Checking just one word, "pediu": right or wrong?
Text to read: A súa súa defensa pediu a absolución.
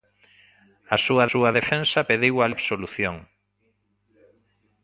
right